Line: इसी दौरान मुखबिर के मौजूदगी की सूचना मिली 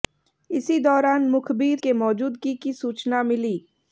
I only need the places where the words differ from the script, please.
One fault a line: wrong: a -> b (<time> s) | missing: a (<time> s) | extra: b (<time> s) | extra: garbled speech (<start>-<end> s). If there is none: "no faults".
no faults